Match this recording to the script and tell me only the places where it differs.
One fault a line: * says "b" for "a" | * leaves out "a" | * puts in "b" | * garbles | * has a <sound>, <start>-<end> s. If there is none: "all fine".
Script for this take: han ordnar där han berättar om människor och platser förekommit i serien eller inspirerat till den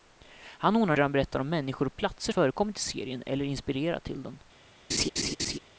* has a laugh, 4.9-5.6 s